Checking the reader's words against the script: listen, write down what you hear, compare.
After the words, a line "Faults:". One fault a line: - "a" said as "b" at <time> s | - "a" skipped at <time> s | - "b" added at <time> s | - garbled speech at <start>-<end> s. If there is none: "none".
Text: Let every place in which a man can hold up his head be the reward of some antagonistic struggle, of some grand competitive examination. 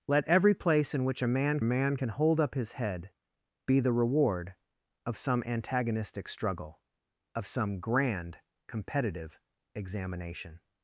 Let every place in which a man man can hold up his head be the reward of some antagonistic struggle, of some grand competitive examination.
Faults:
- "man" added at 1.6 s